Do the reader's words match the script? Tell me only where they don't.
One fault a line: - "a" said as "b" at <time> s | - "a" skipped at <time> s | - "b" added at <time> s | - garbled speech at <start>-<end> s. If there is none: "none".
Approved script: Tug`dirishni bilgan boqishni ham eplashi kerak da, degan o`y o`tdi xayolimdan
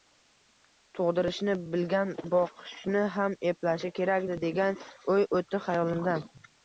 none